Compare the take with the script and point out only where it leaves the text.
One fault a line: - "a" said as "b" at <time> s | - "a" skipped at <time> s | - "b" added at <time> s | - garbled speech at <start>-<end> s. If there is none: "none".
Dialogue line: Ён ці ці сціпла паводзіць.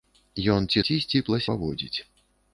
none